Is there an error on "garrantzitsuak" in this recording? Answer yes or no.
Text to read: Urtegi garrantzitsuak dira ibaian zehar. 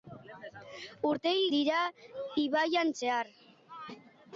yes